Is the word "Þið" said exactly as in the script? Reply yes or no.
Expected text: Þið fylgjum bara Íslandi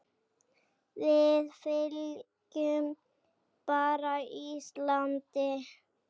no